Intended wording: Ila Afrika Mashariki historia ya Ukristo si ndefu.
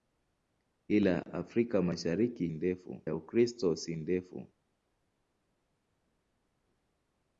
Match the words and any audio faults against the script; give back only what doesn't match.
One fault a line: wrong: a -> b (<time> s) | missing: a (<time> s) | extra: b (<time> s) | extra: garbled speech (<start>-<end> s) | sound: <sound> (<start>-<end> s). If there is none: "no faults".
wrong: historia -> ndefu (2.5 s)